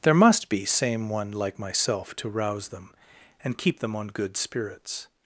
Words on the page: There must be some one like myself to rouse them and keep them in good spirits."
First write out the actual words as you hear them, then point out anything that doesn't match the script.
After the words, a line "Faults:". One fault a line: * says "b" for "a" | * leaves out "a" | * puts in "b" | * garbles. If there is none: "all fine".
There must be same one like myself to rouse them and keep them on good spirits."
Faults:
* says "same" for "some"
* says "on" for "in"